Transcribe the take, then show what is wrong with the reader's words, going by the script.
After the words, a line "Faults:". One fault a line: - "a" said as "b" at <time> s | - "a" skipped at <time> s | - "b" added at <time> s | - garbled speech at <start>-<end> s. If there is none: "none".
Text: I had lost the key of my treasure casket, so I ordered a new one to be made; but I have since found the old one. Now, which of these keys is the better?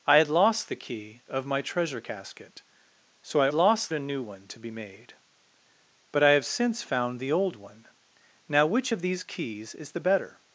I had lost the key of my treasure casket, so I lost a new one to be made; but I have since found the old one. Now, which of these keys is the better?
Faults:
- "ordered" said as "lost" at 3.5 s